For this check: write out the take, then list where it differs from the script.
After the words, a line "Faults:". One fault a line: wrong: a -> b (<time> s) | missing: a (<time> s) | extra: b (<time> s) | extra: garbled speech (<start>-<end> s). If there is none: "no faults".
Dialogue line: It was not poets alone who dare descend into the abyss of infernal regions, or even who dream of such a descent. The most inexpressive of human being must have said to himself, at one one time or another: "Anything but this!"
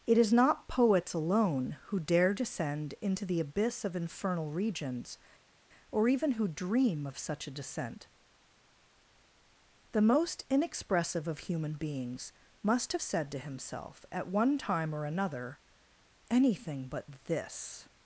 It is not poets alone who dare descend into the abyss of infernal regions, or even who dream of such a descent. The most inexpressive of human beings must have said to himself, at one time or another: "Anything but this!"
Faults:
wrong: was -> is (0.2 s)
wrong: being -> beings (11.7 s)
missing: one (14.6 s)